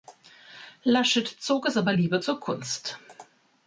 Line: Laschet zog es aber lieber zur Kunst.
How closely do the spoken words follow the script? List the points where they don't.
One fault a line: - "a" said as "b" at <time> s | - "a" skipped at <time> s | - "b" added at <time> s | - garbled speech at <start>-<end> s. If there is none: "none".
none